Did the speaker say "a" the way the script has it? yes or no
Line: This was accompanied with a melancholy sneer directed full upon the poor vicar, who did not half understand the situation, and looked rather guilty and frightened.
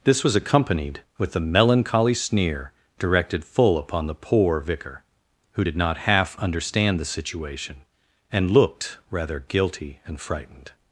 no